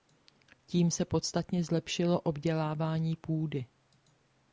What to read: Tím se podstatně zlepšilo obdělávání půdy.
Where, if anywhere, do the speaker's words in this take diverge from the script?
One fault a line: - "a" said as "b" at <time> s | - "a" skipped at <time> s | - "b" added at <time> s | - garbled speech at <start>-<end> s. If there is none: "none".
none